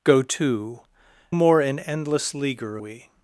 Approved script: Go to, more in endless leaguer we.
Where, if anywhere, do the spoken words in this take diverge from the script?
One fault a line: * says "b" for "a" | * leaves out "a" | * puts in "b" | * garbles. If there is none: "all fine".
all fine